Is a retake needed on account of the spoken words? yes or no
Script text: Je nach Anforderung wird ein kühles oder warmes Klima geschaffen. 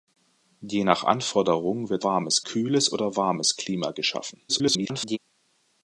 yes